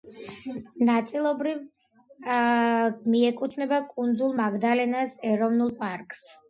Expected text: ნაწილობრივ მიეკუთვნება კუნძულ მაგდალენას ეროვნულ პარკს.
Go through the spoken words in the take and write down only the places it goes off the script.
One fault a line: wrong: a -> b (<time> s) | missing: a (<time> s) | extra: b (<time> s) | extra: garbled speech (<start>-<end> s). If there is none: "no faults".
no faults